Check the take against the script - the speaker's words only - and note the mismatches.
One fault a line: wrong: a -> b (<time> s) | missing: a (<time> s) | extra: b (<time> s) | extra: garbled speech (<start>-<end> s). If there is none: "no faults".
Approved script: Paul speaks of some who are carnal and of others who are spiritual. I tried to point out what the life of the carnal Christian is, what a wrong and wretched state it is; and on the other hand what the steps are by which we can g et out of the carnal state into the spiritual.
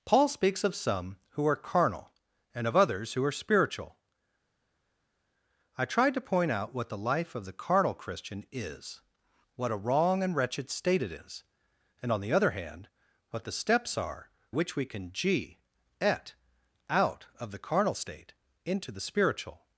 missing: by (14.3 s)